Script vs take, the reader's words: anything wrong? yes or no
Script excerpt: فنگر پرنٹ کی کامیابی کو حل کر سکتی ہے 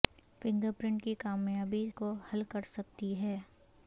no